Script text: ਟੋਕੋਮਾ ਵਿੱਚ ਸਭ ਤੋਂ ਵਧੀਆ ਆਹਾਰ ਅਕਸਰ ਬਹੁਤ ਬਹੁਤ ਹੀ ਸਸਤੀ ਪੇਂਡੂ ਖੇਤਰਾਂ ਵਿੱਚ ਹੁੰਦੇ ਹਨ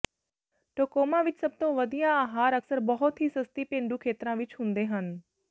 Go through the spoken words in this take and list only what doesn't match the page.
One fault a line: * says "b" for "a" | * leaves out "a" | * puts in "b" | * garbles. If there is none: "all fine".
* leaves out "ਬਹੁਤ"